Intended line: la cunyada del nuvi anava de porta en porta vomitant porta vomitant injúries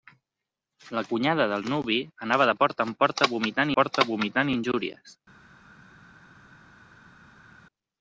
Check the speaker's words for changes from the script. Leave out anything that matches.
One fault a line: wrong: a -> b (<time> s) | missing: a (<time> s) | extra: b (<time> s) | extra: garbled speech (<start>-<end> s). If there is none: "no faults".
no faults